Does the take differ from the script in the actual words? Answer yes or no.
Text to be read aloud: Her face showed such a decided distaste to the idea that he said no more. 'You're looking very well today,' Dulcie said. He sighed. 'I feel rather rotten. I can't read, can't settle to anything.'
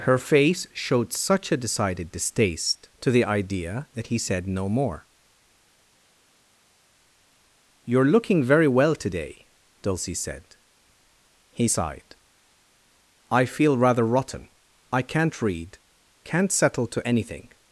no